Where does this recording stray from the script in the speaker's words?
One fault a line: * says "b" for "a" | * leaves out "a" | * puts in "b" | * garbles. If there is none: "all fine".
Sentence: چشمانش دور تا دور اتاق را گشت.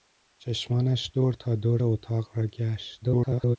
* garbles